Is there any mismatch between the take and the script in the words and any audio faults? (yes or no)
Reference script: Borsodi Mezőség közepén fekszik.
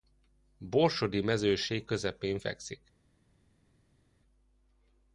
no